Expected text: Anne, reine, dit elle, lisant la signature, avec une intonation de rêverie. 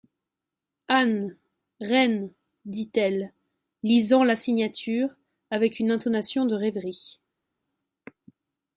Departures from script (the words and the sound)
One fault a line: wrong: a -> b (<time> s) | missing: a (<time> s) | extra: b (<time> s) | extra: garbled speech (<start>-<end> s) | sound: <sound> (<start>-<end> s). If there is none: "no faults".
no faults